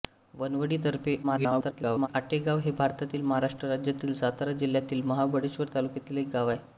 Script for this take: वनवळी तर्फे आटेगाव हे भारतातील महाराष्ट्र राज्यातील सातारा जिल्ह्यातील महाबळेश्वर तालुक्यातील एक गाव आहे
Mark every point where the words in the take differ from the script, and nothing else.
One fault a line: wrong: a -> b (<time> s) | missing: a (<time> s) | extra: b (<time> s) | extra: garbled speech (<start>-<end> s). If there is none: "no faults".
extra: garbled speech (1.2-2.1 s)